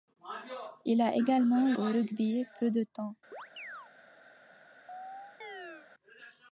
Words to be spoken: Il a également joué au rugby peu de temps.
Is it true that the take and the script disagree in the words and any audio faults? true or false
true